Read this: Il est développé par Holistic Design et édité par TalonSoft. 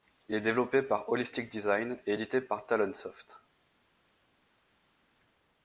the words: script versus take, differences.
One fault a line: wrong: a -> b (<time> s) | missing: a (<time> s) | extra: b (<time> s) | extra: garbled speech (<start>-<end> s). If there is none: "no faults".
no faults